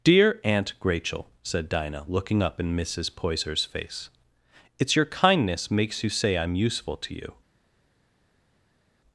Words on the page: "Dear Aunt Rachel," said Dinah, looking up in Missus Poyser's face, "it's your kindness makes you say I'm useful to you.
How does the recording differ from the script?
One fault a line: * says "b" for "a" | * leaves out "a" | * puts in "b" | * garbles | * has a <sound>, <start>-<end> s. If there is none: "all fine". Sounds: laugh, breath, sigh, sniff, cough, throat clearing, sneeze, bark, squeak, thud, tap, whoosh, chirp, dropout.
all fine